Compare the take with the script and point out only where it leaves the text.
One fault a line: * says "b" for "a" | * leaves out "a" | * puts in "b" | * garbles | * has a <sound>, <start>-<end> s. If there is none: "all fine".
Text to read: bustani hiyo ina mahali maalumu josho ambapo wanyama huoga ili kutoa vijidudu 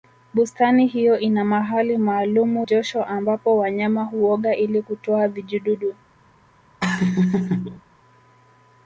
* has a laugh, 6.8-7.8 s